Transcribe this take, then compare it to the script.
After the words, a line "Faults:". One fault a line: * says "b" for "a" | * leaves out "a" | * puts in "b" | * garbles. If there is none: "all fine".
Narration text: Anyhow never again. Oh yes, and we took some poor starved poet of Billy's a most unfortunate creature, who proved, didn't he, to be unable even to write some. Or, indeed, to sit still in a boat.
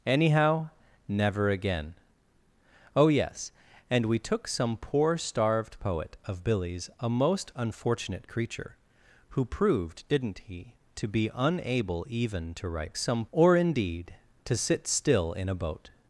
Anyhow never again. Oh yes, and we took some poor starved poet of Billy's a most unfortunate creature, who proved, didn't he, to be unable even to write some. Or, indeed, to sit still in a boat.
Faults:
all fine